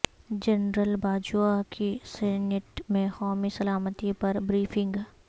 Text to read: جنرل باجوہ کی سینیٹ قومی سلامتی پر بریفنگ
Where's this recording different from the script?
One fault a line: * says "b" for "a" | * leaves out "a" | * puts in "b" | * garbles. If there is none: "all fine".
* puts in "میں"